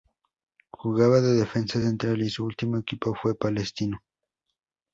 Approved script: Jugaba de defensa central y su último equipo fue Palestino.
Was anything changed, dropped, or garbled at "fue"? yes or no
no